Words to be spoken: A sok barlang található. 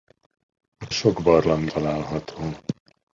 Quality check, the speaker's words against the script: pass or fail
pass